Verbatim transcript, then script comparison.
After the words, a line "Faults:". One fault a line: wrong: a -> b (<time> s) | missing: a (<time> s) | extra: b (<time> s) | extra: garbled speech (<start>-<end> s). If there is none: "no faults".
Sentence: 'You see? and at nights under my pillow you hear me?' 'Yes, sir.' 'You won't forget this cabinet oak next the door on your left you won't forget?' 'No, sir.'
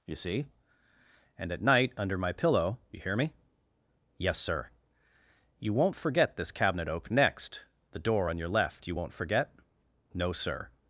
'You see? and at night under my pillow you hear me?' 'Yes, sir.' 'You won't forget this cabinet oak next the door on your left you won't forget?' 'No, sir.'
Faults:
wrong: nights -> night (1.6 s)